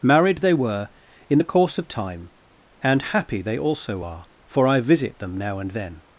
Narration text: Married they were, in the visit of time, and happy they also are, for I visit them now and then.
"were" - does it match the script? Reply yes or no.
yes